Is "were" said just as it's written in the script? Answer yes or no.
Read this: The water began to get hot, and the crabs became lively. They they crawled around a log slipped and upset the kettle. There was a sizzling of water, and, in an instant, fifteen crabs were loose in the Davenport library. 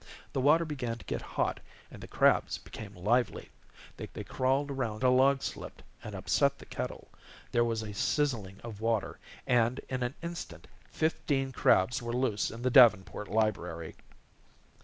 yes